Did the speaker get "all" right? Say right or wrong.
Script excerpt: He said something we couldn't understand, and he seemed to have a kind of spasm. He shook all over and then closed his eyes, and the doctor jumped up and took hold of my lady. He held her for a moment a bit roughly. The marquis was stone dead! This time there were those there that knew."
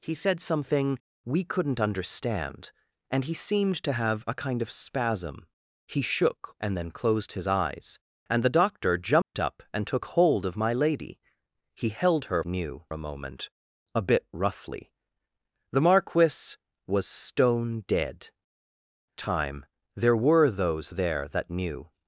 wrong